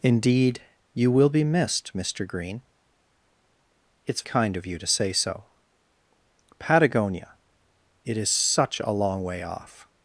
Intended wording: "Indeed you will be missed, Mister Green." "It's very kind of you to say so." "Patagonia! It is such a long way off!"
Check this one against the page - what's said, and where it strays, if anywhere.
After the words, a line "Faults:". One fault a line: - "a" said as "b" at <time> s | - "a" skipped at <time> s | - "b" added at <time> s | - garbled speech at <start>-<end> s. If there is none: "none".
"Indeed you will be missed, Mister Green." "It's kind of you to say so." "Patagonia! It is such a long way off!"
Faults:
- "very" skipped at 4.2 s